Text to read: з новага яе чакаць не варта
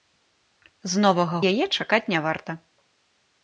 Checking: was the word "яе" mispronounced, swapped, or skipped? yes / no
no